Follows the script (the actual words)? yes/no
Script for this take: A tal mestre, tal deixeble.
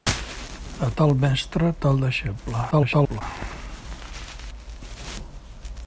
no